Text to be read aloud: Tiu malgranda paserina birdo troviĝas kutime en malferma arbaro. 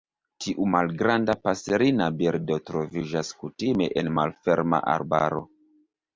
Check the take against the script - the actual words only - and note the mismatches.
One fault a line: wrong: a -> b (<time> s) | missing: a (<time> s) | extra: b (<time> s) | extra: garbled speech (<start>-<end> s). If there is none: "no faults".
no faults